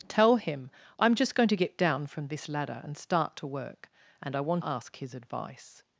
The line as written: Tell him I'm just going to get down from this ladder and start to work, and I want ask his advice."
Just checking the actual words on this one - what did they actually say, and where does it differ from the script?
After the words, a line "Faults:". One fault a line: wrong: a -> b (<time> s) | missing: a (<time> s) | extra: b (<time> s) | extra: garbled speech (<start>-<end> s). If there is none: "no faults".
Tell him I'm just going to get down from this ladder and start to work, and I want ask his advice."
Faults:
no faults